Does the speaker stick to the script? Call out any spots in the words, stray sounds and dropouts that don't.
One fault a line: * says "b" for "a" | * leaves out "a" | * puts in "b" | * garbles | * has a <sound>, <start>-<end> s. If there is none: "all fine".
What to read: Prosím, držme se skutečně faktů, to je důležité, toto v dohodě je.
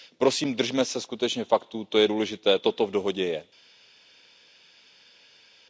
all fine